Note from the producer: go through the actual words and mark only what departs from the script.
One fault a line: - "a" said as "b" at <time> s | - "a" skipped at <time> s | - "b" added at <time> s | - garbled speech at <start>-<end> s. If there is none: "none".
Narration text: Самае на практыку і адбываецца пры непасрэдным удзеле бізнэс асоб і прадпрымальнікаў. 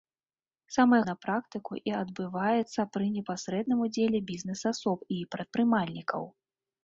none